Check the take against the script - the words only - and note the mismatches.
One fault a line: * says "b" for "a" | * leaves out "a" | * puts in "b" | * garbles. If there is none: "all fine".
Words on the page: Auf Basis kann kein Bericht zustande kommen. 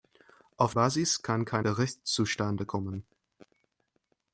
all fine